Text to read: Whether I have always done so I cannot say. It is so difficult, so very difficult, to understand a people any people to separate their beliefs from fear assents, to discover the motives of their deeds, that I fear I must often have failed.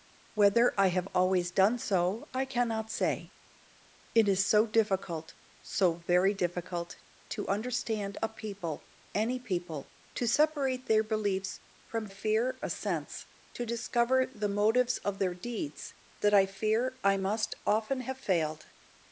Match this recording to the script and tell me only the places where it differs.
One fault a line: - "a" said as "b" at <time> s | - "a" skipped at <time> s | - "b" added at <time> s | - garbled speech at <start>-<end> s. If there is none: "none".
none